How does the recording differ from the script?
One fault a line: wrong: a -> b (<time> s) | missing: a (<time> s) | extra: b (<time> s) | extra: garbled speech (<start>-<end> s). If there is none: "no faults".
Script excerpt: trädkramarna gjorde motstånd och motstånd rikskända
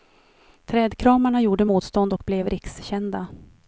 wrong: motstånd -> blev (2.3 s)